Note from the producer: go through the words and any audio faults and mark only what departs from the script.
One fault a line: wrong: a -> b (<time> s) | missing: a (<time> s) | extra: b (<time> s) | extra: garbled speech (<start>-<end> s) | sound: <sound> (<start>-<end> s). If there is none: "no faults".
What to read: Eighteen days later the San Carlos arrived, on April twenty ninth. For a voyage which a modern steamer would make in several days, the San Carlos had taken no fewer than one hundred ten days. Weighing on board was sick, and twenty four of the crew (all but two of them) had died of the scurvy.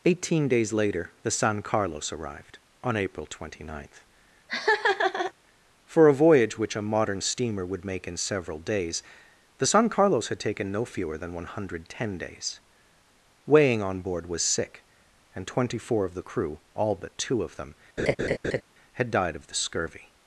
sound: laugh (4.5-5.3 s)
sound: laugh (18.0-18.6 s)